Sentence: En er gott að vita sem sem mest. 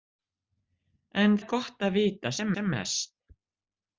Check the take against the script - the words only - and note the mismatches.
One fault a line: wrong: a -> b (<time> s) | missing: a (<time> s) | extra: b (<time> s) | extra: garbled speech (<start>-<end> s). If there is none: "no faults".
no faults